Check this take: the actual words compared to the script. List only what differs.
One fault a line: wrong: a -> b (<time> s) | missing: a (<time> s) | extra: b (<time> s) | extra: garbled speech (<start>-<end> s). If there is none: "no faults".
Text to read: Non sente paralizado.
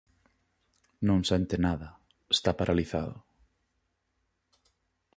extra: nada Está (1.6 s)